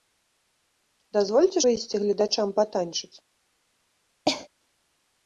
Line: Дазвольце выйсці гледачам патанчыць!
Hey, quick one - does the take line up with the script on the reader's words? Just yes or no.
yes